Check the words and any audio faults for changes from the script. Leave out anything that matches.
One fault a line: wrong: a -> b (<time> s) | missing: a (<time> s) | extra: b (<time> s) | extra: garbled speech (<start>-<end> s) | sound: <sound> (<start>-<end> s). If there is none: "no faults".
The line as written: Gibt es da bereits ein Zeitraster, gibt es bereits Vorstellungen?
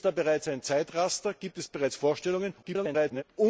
extra: garbled speech (2.6-3.2 s)